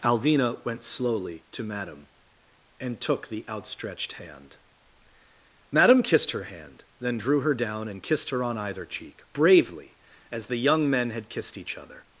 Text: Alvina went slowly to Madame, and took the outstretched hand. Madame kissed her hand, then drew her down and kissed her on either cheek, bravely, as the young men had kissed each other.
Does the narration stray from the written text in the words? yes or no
no